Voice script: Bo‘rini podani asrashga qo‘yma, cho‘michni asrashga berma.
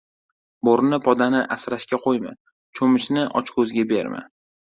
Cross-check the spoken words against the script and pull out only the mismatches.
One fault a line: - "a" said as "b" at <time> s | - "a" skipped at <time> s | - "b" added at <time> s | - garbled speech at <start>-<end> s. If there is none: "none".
- "asrashga" said as "ochko‘zga" at 3.4 s